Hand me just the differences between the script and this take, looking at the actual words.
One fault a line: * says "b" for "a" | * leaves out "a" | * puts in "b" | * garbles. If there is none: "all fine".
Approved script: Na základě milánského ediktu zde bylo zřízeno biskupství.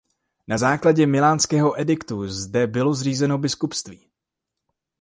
all fine